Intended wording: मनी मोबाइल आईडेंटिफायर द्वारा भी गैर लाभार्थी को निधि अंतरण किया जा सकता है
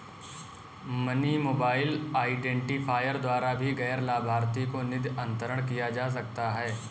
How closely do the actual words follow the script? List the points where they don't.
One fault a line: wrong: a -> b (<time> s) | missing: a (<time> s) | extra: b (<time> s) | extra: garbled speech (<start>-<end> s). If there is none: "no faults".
no faults